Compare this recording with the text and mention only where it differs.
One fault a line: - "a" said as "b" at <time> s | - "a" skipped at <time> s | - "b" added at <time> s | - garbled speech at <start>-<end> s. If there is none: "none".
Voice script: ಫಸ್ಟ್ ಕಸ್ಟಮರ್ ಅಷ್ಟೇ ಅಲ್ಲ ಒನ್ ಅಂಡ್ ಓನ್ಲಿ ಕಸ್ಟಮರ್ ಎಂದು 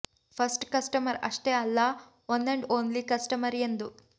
none